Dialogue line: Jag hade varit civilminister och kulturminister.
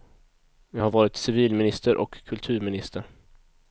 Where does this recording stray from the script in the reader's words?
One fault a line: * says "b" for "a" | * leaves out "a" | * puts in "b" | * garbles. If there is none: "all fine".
* says "har" for "hade"